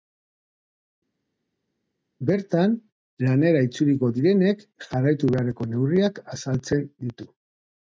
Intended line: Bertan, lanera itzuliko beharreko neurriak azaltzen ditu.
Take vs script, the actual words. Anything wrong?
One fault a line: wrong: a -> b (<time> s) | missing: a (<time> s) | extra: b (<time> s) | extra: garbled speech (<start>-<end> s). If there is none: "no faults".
extra: direnek jarraitu (4.2 s)